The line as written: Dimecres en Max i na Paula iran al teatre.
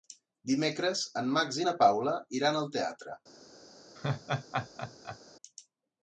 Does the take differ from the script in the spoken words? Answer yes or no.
no